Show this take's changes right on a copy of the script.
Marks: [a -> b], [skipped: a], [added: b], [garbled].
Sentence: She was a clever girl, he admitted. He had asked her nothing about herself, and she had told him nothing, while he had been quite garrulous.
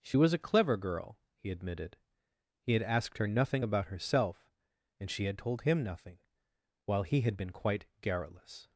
She was a clever girl, he admitted. He had asked her nothing about herself, and she had told him nothing, while he had been quite garrulous.